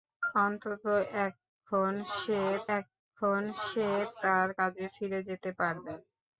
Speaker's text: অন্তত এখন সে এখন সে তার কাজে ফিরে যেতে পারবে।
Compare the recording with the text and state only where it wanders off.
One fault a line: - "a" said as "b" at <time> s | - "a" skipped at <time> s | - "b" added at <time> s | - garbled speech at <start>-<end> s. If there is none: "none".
none